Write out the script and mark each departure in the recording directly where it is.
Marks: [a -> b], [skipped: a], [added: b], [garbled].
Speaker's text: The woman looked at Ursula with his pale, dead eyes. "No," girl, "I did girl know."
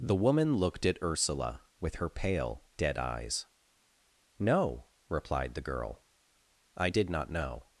The woman looked at Ursula with [his -> her] pale, dead eyes. "No," [added: replied the] girl, "I did [girl -> not] know."